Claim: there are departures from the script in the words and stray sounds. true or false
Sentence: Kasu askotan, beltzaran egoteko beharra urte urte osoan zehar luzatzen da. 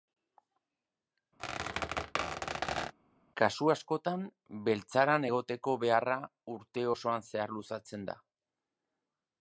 true